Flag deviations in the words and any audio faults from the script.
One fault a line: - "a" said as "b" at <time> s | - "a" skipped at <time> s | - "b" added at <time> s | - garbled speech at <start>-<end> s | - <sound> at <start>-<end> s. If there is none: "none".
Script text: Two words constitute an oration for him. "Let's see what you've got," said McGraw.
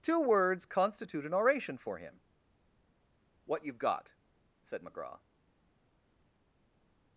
- "Let's see" skipped at 2.2 s